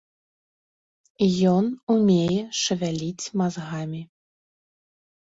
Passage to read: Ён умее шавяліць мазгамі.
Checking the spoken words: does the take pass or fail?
pass